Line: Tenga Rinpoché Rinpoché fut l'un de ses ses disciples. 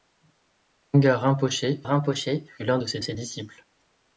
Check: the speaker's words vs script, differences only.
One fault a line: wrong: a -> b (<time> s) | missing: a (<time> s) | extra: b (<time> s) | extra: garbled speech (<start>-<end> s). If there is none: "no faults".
no faults